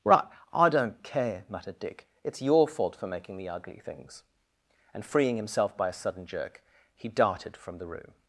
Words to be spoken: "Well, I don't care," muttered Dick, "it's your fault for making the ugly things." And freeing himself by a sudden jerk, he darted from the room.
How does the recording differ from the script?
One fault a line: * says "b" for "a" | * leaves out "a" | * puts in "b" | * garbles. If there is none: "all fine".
* says "Right" for "Well"